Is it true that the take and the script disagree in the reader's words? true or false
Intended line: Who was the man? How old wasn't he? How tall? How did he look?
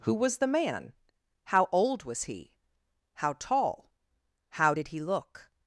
true